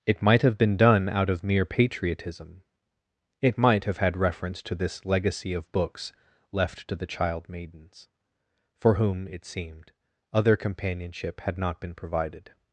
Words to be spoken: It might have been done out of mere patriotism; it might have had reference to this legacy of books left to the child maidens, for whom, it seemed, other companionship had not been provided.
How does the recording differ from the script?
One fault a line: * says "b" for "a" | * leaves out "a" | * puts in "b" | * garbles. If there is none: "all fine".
all fine